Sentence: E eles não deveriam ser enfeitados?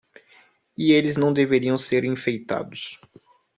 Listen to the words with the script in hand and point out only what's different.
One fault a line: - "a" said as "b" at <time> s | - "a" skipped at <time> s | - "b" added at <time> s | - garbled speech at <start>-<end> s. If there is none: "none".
none